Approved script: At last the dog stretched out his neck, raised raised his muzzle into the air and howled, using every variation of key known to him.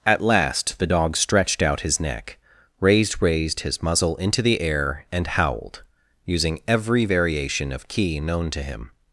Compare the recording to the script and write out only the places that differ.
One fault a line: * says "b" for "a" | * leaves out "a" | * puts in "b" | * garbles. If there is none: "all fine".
all fine